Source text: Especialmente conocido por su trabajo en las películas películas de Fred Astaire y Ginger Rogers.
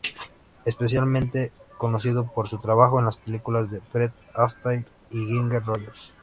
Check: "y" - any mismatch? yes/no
no